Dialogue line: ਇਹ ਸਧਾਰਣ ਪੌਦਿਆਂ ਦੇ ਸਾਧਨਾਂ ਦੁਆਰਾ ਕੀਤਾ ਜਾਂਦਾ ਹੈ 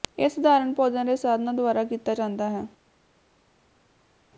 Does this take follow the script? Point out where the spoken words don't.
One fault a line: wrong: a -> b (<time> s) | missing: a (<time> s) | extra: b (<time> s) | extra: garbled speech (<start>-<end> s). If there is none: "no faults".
no faults